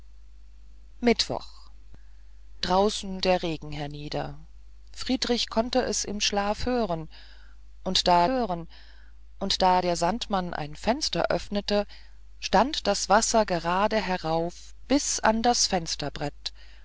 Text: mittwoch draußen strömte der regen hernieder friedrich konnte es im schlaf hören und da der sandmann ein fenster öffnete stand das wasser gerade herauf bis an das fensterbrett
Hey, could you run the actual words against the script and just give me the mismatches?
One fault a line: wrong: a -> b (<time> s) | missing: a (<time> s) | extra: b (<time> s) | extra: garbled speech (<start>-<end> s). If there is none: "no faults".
missing: strömte (3.2 s)
extra: hören und da (8.3 s)